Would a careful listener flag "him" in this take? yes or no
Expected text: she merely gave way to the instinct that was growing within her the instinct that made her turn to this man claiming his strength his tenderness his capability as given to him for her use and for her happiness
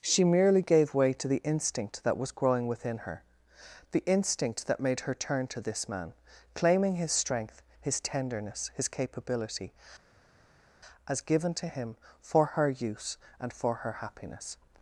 no